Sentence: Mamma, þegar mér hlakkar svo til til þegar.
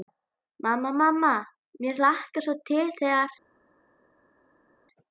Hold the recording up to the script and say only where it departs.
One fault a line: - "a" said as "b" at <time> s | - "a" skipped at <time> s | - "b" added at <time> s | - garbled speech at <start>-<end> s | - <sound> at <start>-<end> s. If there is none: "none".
- "þegar" said as "mamma" at 1.0 s
- "til" skipped at 2.9 s